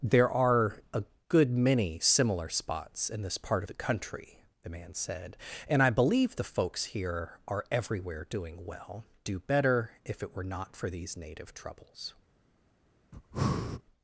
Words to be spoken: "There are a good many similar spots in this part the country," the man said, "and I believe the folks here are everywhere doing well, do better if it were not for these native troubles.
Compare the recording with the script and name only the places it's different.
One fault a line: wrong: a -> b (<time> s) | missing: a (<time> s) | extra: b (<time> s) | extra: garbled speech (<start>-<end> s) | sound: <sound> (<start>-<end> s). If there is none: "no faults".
sound: breath (13.1-13.8 s)